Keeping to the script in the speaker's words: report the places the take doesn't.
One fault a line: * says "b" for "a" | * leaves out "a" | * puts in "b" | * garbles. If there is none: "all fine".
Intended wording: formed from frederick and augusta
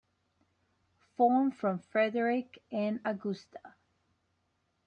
all fine